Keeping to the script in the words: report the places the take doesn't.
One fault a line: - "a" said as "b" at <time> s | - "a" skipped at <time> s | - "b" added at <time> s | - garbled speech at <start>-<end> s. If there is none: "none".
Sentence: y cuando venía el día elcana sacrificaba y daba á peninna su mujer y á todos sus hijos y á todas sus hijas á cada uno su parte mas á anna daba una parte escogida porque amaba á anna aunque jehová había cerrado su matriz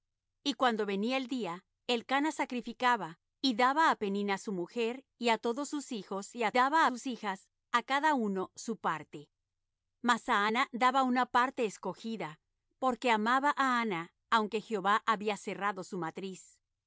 - "todas" said as "daba" at 6.5 s